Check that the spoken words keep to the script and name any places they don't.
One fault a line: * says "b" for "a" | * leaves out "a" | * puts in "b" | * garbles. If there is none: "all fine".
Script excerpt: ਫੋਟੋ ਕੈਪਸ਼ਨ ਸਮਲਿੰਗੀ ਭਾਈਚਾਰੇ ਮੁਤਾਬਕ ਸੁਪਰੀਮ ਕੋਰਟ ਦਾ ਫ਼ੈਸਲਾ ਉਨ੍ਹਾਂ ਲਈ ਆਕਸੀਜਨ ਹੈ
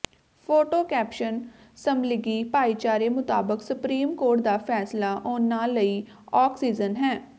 all fine